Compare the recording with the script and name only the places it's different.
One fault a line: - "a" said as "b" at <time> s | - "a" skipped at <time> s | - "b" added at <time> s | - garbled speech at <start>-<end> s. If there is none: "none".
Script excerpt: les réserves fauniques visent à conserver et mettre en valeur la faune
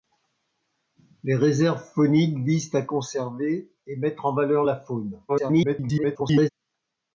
- garbled speech at 5.3-6.5 s